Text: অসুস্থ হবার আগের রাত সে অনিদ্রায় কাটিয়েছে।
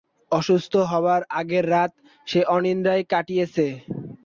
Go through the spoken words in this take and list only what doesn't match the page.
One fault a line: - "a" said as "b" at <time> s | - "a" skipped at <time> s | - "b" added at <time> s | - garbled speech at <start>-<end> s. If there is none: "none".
none